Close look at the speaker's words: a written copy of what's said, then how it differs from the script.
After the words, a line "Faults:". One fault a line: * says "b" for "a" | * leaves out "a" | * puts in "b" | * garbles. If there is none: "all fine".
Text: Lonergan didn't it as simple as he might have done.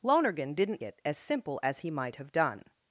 Lonergan didn't it as simple as he might have done.
Faults:
all fine